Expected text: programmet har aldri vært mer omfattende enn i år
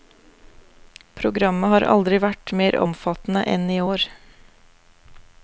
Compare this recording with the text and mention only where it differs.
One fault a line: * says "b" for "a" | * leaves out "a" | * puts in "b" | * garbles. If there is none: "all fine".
all fine